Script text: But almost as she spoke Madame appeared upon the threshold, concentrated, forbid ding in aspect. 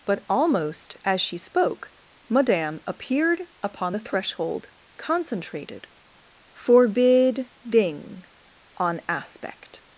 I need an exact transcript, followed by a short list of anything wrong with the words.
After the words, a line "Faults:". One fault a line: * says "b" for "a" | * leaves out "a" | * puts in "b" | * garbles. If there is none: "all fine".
But almost as she spoke Madame appeared upon the threshold, concentrated, forbid ding on aspect.
Faults:
* says "on" for "in"